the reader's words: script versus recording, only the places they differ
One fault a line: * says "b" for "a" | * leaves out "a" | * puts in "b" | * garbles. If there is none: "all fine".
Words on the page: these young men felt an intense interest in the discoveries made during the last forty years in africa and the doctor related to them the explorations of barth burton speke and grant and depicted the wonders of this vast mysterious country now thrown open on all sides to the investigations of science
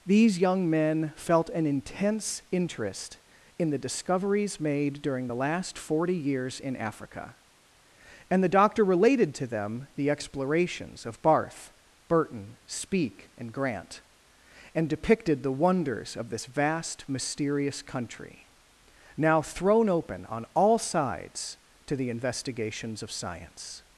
all fine